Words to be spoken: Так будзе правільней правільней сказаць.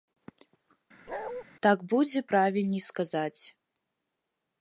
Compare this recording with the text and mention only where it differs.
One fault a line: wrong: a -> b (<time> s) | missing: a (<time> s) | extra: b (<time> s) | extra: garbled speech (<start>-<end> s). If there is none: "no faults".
missing: правільней (2.8 s)